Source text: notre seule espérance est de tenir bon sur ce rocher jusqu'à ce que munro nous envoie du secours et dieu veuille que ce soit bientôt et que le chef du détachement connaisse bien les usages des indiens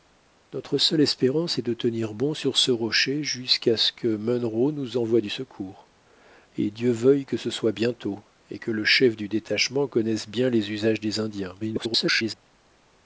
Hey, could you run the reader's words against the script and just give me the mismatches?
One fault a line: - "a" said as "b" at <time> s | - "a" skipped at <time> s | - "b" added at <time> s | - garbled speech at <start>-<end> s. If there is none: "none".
- garbled speech at 11.6-12.3 s